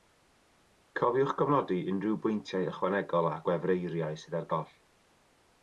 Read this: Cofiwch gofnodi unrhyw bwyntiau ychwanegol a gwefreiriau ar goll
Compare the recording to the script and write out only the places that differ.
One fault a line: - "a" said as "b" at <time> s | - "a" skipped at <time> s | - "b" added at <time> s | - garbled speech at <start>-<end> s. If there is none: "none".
- "sydd" added at 4.3 s